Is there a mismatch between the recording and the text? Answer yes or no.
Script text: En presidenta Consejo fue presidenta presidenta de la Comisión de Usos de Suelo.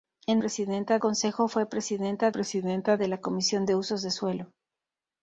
no